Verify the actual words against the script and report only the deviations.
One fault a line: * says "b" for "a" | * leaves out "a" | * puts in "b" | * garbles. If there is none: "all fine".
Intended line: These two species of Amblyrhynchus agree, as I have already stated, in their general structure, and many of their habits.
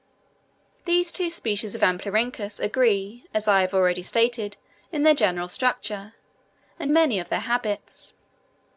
all fine